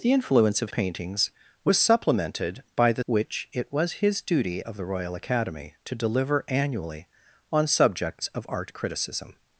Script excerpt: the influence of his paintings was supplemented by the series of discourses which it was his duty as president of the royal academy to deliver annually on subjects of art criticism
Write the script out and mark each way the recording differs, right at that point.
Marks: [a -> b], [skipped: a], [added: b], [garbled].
the influence of [skipped: his] paintings was supplemented by the [skipped: series of discourses] which it was his duty [skipped: as president] of the royal academy to deliver annually on subjects of art criticism